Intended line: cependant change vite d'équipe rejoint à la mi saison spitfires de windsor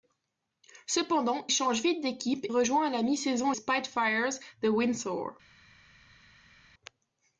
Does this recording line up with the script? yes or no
yes